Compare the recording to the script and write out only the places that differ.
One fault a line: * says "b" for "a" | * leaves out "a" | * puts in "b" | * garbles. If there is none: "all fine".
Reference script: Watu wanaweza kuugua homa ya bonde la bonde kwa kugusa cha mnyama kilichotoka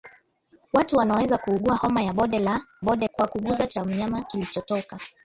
all fine